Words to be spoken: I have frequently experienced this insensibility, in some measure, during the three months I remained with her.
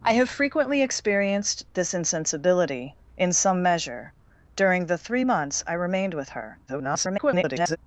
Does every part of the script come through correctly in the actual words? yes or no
no